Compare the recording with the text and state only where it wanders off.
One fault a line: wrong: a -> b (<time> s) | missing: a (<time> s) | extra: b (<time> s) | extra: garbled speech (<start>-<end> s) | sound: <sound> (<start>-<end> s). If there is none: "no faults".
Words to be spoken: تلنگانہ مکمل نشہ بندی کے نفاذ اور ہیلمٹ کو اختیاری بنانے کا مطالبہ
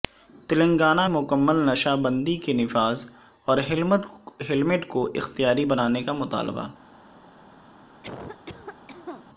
sound: cough (8.0-9.3 s)